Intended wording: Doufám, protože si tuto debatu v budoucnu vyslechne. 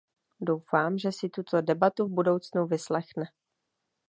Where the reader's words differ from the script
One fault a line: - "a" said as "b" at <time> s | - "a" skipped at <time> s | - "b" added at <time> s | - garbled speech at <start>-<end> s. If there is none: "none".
- "protože" said as "že" at 1.0 s